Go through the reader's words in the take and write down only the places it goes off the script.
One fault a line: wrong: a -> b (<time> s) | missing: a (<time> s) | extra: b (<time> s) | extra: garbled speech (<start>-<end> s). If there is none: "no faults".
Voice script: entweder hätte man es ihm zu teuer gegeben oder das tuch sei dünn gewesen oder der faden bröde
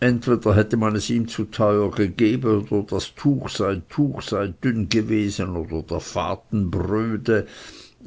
extra: tuch sei (3.9 s)